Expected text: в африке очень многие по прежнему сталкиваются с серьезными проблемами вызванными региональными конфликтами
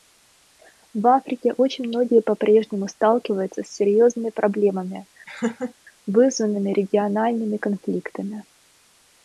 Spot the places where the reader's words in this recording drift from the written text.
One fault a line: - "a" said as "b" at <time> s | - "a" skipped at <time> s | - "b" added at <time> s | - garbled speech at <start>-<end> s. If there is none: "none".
none